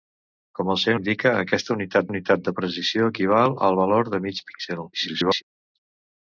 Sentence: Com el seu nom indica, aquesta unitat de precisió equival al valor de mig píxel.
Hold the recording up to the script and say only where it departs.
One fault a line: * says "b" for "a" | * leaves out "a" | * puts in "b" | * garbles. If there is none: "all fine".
* leaves out "nom"
* puts in "unitat"
* garbles